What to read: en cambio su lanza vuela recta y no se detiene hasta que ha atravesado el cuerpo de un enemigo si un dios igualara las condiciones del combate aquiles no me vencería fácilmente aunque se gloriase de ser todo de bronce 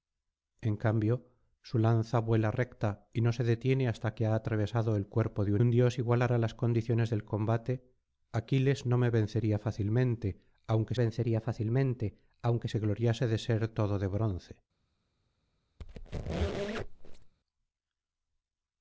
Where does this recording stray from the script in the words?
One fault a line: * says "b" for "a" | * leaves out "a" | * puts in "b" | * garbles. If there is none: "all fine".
* leaves out "enemigo si"
* puts in "vencería fácilmente aunque"